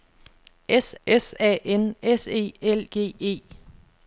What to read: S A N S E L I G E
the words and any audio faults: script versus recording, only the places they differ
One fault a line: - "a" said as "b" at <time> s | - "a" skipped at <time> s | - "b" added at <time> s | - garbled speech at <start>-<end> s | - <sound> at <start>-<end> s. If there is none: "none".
- "s" added at 1.0 s
- "I" skipped at 2.8 s